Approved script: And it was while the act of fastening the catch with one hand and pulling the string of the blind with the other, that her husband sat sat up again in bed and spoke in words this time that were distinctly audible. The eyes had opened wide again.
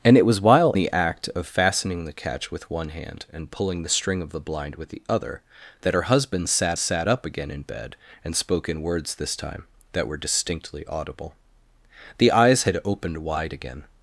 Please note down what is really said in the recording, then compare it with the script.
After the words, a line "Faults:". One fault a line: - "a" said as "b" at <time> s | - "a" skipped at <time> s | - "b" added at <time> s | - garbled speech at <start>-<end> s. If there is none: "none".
And it was while the act of fastening the catch with one hand and pulling the string of the blind with the other, that her husband sat sat up again in bed and spoke in words this time that were distinctly audible. The eyes had opened wide again.
Faults:
none